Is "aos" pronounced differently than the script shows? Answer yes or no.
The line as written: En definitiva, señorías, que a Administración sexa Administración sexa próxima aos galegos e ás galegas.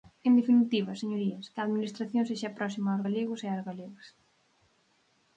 no